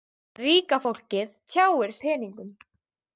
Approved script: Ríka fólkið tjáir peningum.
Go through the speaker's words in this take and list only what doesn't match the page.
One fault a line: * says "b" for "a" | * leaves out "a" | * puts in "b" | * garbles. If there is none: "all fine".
all fine